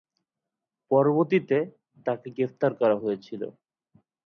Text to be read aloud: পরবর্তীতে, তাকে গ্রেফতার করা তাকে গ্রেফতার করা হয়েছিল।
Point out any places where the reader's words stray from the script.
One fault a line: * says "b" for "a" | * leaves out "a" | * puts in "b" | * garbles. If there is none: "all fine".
* leaves out "তাকে গ্রেফতার করা"